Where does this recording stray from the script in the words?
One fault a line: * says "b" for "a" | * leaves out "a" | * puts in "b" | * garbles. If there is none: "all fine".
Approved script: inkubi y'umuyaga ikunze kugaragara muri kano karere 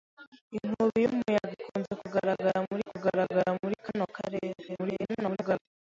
* puts in "kugaragara muri"
* garbles